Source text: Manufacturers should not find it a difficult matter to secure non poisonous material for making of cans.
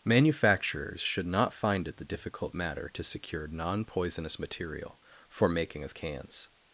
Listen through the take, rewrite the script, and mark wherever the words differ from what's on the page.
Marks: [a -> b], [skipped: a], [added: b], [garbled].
Manufacturers should not find it [a -> the] difficult matter to secure non poisonous material for making of cans.